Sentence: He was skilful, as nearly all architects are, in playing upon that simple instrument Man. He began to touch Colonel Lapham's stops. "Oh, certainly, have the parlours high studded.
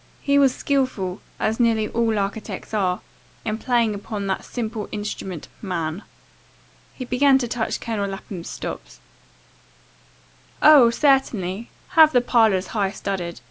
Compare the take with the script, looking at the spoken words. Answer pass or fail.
pass